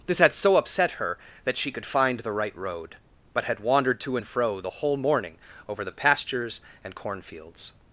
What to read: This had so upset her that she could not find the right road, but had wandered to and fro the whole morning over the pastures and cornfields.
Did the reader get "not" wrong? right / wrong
wrong